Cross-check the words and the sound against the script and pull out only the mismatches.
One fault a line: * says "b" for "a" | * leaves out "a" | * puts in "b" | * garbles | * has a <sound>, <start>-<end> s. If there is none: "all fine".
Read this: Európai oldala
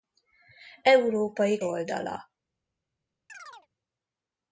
* has a chirp, 3.3-3.7 s